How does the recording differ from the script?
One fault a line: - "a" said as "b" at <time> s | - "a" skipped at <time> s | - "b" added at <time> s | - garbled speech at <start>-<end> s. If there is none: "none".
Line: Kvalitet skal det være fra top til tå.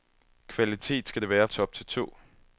- "fra" skipped at 1.5 s